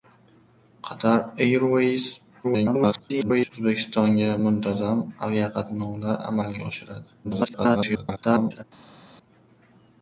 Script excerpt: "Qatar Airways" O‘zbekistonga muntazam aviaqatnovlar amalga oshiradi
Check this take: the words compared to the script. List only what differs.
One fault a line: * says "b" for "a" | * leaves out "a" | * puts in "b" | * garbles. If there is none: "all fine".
* garbles
* garbles